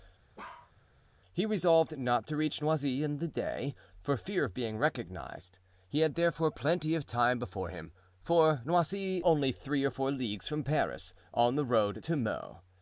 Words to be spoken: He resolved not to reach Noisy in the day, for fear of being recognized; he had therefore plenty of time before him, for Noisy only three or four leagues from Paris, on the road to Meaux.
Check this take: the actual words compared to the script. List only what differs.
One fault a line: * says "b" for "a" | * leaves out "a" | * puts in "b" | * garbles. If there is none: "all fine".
all fine